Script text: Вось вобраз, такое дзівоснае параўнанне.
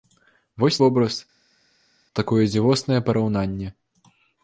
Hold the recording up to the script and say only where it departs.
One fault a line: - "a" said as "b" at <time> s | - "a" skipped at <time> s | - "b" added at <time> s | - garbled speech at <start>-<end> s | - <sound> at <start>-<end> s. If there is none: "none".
none